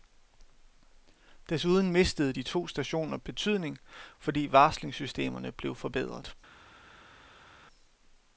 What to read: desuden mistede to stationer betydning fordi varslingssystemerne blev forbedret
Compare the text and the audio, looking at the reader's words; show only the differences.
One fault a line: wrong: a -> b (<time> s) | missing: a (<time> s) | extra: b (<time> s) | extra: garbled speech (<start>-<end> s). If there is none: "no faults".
extra: de (2.3 s)